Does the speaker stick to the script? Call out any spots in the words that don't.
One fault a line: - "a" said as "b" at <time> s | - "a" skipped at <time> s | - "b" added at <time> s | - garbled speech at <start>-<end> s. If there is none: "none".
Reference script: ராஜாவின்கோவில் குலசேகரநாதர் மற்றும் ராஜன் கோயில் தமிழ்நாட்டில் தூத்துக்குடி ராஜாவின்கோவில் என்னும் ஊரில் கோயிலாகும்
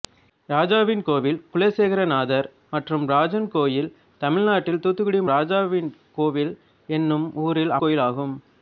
none